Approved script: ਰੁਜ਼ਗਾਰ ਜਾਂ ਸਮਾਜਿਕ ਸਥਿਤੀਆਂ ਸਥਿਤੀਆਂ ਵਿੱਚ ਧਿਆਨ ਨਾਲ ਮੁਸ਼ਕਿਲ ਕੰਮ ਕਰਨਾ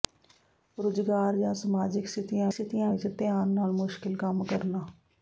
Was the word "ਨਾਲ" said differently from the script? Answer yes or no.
no